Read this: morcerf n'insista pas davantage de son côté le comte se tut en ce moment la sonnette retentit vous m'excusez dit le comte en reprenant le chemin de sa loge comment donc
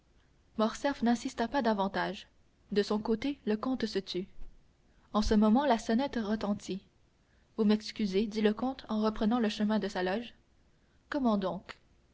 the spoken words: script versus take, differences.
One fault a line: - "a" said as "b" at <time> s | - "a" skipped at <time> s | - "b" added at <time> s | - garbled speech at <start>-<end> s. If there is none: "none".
none